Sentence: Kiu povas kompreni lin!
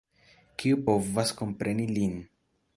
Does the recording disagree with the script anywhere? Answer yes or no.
no